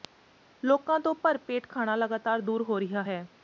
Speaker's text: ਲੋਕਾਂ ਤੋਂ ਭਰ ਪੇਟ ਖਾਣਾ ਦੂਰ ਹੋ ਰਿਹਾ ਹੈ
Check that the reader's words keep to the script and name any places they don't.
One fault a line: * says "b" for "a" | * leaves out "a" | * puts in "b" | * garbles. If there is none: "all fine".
* puts in "ਲਗਾਤਾਰ"